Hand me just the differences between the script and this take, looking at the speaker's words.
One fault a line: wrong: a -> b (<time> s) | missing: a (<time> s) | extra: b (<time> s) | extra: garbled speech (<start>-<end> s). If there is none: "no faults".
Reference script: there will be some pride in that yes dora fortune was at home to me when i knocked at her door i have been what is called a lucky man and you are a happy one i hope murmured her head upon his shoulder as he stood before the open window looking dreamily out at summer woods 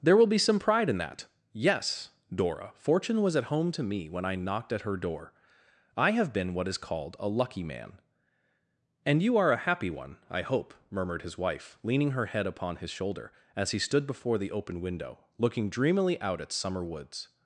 extra: his wife leaning (11.2 s)